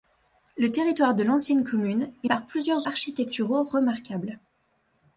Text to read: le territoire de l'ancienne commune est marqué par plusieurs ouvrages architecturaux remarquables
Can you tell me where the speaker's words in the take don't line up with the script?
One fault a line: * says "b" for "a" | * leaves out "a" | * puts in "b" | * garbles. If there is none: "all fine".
* leaves out "marqué"
* leaves out "ouvrages"